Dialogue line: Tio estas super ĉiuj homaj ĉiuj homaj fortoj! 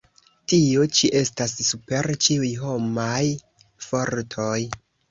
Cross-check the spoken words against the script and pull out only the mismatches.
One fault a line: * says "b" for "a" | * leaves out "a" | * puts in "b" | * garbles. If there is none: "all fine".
* puts in "ĉi"
* leaves out "ĉiuj homaj"